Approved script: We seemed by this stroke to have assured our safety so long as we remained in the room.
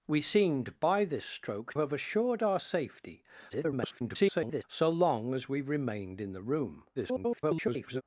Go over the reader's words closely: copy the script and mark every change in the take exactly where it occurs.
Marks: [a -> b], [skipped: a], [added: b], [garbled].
We seemed by this stroke [skipped: to] have assured our safety [garbled] so long as we remained in the room. [garbled]